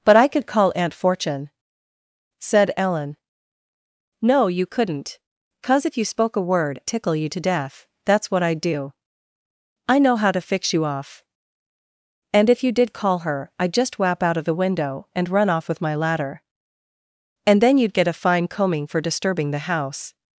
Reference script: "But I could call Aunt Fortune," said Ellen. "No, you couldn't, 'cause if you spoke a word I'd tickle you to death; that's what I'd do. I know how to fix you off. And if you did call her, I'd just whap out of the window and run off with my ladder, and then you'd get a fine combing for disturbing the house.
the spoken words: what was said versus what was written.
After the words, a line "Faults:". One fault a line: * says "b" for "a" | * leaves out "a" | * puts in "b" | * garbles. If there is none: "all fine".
"But I could call Aunt Fortune," said Ellen. "No, you couldn't, 'cause if you spoke a word Tickle you to death; that's what I'd do. I know how to fix you off. And if you did call her, I'd just whap out of the window and run off with my ladder, and then you'd get a fine combing for disturbing the house.
Faults:
* leaves out "I'd"